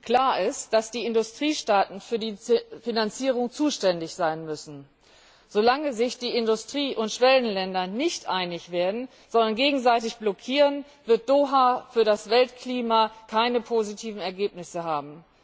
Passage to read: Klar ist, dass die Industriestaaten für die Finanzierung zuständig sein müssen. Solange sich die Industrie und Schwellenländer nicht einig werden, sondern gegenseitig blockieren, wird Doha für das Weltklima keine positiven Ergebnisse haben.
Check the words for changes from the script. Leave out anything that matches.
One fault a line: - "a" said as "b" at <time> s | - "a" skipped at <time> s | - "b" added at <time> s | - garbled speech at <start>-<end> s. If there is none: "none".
none